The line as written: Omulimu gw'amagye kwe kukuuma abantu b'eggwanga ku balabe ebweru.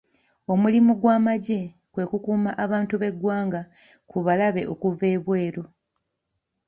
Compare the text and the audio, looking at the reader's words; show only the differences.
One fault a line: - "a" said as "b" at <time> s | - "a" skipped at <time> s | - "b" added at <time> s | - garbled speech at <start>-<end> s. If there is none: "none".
- "okuva" added at 4.7 s